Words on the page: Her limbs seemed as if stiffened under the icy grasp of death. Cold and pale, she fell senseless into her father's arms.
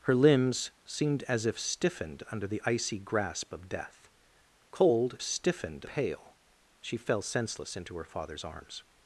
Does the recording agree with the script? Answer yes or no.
no